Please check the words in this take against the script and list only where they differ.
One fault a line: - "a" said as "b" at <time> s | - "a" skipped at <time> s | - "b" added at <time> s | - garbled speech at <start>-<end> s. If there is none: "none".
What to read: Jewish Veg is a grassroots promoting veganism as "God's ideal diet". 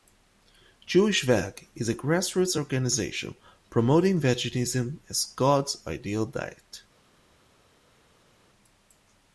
- "organization" added at 2.6 s